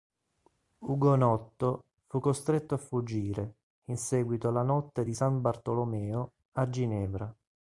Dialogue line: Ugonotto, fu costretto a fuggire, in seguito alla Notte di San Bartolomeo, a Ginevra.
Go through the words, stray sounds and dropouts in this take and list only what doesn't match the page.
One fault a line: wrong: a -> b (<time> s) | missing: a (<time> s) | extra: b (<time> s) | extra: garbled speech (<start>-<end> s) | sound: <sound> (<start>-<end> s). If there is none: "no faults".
no faults